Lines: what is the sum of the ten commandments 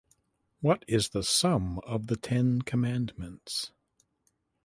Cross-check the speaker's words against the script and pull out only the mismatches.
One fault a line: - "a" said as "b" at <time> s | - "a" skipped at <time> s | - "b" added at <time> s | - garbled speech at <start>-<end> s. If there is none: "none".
none